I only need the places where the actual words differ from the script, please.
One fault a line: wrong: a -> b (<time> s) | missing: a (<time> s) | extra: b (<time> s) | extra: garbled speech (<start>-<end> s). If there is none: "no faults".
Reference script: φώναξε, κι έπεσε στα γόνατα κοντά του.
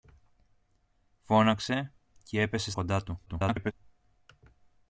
missing: στα γόνατα (2.7 s)
extra: garbled speech (3.3-3.7 s)